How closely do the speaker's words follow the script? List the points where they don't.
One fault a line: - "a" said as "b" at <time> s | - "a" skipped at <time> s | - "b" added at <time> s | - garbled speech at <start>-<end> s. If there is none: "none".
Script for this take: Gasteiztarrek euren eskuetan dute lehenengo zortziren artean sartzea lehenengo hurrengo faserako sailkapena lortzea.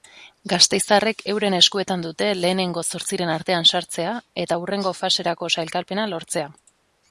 - "lehenengo" said as "eta" at 4.5 s